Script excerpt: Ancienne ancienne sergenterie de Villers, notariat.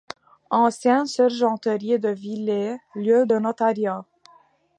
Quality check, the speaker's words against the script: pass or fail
fail